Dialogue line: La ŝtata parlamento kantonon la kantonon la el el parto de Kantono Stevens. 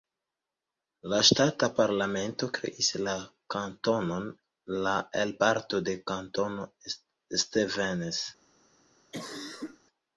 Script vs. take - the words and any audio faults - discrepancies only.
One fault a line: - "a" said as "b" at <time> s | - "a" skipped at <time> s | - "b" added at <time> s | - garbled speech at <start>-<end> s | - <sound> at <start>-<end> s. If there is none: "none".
- "kantonon" said as "kreis" at 2.6 s
- "el" skipped at 5.4 s
- cough at 9.1-9.8 s